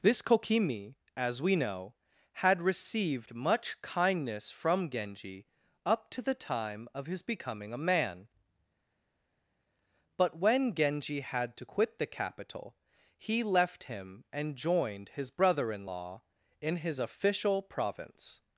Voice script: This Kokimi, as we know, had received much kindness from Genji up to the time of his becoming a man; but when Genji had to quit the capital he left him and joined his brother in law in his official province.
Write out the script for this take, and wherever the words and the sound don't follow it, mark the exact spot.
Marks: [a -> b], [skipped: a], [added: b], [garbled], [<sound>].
This Kokimi, as we know, had received much kindness from Genji up to the time of his becoming a man; but when Genji had to quit the capital he left him and joined his brother in law in his official province.